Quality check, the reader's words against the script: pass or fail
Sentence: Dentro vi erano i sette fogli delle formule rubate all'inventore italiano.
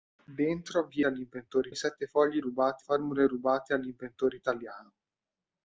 fail